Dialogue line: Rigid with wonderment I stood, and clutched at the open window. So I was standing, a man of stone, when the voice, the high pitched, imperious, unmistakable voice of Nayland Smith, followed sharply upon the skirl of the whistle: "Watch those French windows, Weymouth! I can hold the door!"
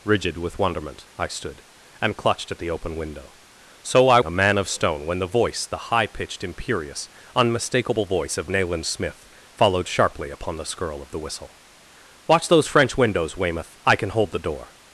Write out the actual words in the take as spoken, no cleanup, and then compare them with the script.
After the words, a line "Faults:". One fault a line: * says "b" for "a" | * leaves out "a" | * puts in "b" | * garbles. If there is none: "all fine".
Rigid with wonderment I stood, and clutched at the open window. So I a man of stone, when the voice, the high pitched, imperious, unmistakable voice of Nayland Smith, followed sharply upon the skirl of the whistle: "Watch those French windows, Weymouth! I can hold the door!"
Faults:
* leaves out "was standing"